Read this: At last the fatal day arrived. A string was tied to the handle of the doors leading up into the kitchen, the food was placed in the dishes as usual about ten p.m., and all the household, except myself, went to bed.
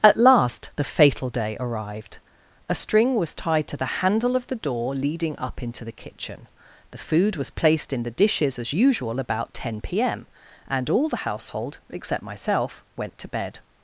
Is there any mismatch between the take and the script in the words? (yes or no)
yes